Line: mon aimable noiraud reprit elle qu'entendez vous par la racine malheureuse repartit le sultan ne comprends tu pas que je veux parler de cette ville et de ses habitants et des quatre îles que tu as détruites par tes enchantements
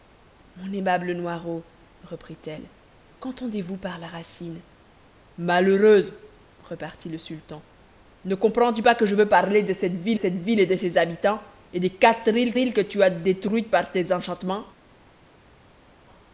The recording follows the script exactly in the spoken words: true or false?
false